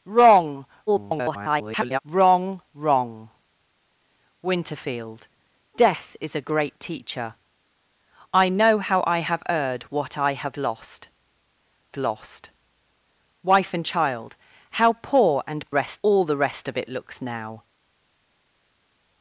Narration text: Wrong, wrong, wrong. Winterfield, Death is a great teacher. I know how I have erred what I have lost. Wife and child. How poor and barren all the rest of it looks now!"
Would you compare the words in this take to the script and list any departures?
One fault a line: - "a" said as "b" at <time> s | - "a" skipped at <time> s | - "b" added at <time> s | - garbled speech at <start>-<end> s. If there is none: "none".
- garbled speech at 0.9-2.0 s
- "lost" added at 11.9 s
- "barren" said as "rest" at 15.7 s